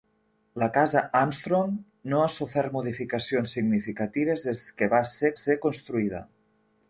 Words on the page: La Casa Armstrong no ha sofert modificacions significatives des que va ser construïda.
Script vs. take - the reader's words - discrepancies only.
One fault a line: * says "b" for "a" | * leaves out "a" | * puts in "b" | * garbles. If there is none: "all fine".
* puts in "ser"